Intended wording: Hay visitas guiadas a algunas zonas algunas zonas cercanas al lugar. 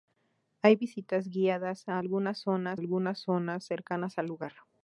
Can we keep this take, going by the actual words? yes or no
yes